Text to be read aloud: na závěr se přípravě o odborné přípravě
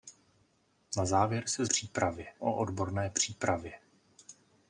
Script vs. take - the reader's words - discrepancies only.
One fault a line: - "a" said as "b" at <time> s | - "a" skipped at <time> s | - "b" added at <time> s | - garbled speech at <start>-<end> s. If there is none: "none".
none